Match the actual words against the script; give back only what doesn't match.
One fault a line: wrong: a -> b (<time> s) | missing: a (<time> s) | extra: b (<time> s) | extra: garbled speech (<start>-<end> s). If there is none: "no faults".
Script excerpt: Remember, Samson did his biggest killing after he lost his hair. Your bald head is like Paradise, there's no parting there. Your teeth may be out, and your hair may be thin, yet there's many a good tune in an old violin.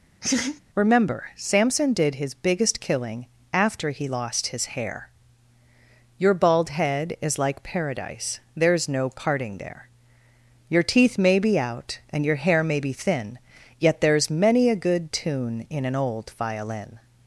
no faults